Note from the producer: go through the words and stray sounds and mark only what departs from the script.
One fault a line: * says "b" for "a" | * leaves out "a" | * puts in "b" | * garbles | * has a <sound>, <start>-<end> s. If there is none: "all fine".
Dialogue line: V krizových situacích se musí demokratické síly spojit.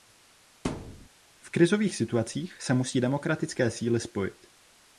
* has a thud, 0.6-1.1 s